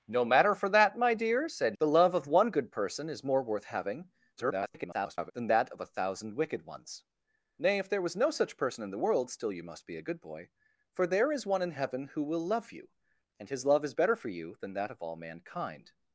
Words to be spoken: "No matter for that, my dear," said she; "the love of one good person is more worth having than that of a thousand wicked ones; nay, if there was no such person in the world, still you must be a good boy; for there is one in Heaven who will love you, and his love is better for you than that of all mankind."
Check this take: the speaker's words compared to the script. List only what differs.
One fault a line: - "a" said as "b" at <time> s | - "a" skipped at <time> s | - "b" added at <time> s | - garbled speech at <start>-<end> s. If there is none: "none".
- "she" skipped at 1.8 s
- garbled speech at 4.4-5.3 s